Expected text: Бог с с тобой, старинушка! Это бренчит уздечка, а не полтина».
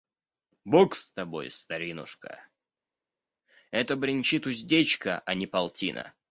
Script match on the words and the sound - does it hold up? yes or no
no